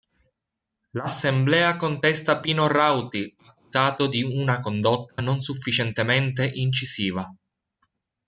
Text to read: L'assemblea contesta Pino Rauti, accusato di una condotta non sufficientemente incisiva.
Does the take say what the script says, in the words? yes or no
yes